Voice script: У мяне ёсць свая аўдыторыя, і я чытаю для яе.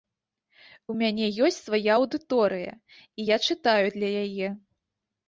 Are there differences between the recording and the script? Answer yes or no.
no